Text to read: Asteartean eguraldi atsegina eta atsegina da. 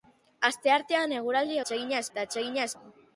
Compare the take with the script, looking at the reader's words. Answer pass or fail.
pass